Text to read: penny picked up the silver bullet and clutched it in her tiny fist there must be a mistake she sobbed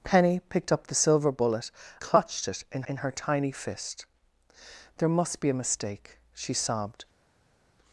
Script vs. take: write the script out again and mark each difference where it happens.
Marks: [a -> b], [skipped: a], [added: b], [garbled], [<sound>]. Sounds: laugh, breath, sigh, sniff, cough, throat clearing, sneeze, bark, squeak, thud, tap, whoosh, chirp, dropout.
penny picked up the silver bullet [skipped: and] clutched it in [added: in] her tiny fist there must be a mistake she sobbed